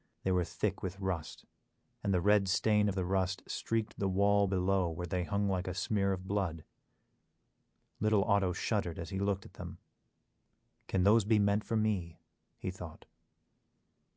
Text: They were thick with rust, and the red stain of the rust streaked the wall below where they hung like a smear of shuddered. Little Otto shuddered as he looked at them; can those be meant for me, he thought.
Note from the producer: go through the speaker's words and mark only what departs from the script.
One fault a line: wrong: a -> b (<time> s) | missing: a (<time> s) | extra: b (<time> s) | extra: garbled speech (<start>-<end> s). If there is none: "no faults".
wrong: shuddered -> blood (6.3 s)